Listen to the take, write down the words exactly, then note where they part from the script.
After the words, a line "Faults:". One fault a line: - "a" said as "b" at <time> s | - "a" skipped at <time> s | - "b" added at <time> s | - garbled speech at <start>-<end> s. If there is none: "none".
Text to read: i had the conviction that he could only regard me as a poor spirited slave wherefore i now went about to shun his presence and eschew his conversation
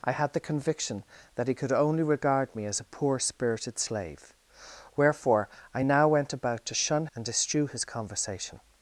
i had the conviction that he could only regard me as a poor spirited slave wherefore i now went about to shun and eschew his conversation
Faults:
- "his presence" skipped at 7.1 s